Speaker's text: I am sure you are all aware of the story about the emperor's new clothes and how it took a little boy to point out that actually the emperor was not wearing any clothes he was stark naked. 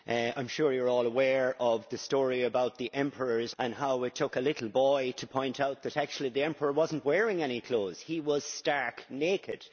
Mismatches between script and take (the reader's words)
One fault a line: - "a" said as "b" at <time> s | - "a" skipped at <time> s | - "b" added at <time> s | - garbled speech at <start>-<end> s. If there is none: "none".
- "new clothes" skipped at 3.5 s